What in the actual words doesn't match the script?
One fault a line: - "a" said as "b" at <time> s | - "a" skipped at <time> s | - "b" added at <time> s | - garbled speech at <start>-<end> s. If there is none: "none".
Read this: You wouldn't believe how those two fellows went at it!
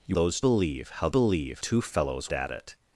- "wouldn't" said as "those" at 0.1 s
- "those" said as "believe" at 1.1 s
- "went" skipped at 2.3 s